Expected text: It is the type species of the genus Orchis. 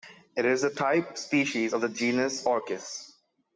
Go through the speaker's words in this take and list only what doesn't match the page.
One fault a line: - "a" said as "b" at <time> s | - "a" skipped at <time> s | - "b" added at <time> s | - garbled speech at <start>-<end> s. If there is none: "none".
none